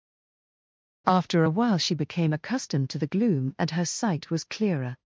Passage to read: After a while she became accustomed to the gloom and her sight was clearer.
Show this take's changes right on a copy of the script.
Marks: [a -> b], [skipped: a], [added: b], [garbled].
After a while she became accustomed to the gloom and her sight was clearer.